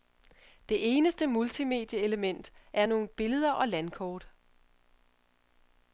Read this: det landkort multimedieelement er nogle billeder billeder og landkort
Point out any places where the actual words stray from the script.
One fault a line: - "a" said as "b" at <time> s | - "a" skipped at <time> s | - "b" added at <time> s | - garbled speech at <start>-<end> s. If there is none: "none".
- "landkort" said as "eneste" at 1.0 s
- "billeder" skipped at 3.5 s